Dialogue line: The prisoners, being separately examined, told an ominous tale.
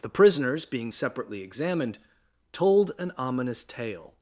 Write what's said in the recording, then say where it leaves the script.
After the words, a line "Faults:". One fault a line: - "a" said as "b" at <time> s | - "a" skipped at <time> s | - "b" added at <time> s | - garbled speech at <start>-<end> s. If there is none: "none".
The prisoners, being separately examined, told an ominous tale.
Faults:
none